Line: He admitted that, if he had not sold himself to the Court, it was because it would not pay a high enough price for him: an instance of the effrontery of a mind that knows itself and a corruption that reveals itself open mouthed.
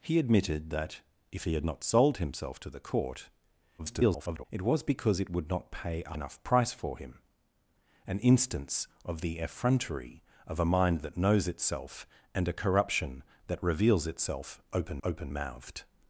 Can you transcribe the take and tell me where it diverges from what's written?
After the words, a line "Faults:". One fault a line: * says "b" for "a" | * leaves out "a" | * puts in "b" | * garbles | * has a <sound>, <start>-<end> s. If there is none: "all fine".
He admitted that, if he had not sold himself to the Court, [garbled] it was because it would not pay a enough price for him: an instance of the effrontery of a mind that knows itself and a corruption that reveals itself open open mouthed.
Faults:
* garbles
* leaves out "high"
* puts in "open"